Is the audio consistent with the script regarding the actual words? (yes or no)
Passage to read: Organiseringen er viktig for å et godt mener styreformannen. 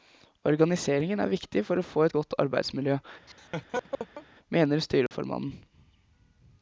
no